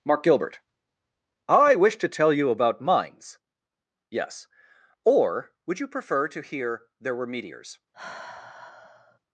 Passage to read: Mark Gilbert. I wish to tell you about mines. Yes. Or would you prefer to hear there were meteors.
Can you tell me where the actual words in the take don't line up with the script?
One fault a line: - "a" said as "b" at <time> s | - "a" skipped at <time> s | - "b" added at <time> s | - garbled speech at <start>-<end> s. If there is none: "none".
none